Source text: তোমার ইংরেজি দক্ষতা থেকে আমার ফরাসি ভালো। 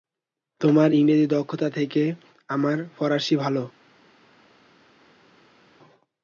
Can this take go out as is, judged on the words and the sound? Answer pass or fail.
pass